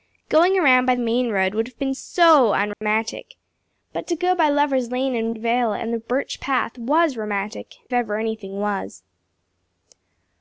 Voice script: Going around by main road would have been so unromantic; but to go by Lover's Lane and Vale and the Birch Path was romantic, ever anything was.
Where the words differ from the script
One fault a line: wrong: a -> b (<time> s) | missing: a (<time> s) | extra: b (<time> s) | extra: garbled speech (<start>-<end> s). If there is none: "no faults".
no faults